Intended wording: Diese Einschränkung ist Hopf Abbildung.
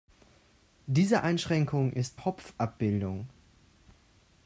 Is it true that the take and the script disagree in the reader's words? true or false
false